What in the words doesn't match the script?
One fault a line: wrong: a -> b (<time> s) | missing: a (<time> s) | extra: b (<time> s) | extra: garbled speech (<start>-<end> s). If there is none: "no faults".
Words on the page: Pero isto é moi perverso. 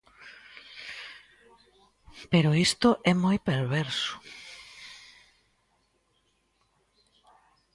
no faults